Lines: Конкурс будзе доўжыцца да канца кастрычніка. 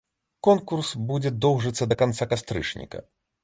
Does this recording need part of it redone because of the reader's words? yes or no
no